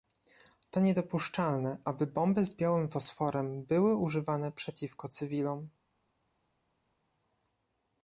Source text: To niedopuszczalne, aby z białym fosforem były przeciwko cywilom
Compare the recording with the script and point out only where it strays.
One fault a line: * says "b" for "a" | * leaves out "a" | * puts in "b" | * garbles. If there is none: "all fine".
* puts in "bomby"
* puts in "używane"